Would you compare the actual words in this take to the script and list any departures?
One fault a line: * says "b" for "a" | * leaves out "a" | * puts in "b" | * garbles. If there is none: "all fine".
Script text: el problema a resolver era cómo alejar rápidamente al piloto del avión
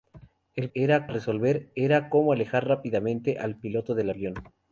* says "era" for "problema"